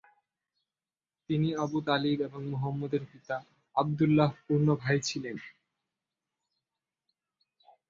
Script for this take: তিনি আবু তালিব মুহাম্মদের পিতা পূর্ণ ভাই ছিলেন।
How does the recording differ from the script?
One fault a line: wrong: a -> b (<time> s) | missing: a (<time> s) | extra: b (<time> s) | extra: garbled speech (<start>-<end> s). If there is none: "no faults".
extra: এবং (2.2 s)
extra: আবদুল্লাহর (3.8 s)